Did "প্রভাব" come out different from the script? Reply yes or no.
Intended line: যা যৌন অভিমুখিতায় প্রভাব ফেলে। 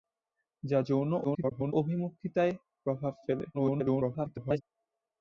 no